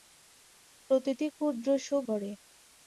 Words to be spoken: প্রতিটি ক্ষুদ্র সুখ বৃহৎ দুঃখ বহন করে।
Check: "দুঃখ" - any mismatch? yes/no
yes